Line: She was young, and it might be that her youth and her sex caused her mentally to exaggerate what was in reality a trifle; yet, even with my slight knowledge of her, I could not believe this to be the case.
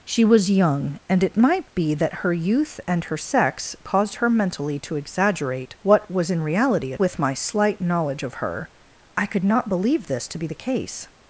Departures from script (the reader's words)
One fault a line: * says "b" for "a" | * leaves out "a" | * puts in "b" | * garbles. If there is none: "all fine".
* leaves out "trifle yet even"